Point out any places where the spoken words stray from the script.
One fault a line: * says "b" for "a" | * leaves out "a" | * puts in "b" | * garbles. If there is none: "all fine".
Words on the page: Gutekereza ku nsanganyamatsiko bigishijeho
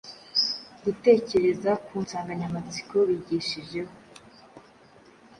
all fine